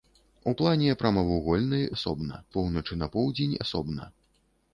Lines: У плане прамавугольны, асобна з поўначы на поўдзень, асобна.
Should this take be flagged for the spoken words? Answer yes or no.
no